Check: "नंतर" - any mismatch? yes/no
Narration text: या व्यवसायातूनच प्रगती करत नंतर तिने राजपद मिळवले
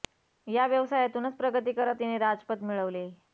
yes